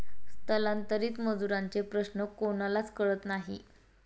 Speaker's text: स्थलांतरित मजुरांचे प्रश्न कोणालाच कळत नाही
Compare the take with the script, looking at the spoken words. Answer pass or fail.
pass